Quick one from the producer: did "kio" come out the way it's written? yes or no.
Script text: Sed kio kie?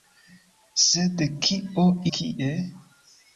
yes